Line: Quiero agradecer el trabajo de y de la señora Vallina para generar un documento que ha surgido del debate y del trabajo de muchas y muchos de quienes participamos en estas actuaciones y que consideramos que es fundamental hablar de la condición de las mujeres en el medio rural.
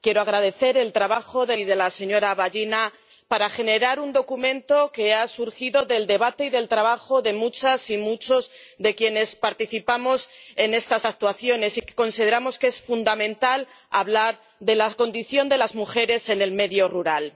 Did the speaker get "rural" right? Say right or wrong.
right